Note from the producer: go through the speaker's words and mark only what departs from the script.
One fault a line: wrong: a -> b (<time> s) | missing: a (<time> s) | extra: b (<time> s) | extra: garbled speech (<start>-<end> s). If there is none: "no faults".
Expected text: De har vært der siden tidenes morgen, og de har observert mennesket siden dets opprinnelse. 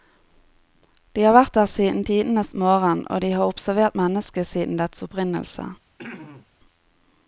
no faults